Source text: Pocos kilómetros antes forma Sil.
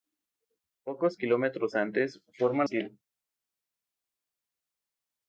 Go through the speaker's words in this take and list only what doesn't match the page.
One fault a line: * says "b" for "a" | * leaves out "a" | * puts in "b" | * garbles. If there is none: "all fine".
all fine